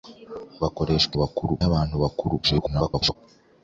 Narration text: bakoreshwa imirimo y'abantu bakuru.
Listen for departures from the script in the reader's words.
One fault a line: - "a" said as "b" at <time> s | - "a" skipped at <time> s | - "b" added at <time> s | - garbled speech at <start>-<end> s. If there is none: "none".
- "imirimo" said as "bakuru" at 1.2 s
- garbled speech at 2.4-3.2 s